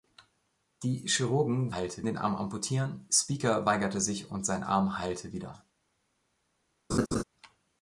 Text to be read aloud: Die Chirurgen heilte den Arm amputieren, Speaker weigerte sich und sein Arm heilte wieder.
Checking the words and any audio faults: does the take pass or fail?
fail